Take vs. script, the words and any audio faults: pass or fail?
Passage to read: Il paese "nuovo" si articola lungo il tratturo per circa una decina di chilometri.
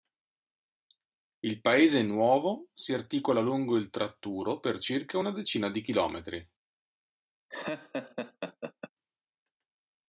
fail